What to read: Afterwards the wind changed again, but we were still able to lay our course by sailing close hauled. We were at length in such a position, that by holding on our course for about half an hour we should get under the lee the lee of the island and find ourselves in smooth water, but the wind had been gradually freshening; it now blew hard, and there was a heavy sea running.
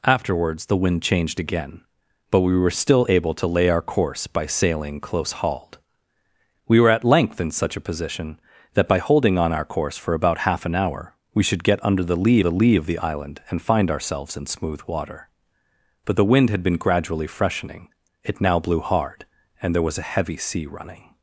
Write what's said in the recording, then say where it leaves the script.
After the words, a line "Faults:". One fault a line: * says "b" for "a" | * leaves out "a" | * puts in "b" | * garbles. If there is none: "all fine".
Afterwards the wind changed again, but we were still able to lay our course by sailing close hauled. We were at length in such a position, that by holding on our course for about half an hour we should get under the lee the lee of the island and find ourselves in smooth water, but the wind had been gradually freshening; it now blew hard, and there was a heavy sea running.
Faults:
all fine